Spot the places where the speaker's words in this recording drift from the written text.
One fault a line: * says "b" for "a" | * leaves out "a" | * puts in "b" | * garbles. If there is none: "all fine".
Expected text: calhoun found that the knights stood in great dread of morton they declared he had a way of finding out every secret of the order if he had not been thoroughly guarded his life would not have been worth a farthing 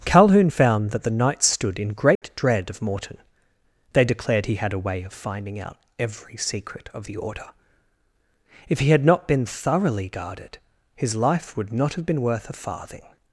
all fine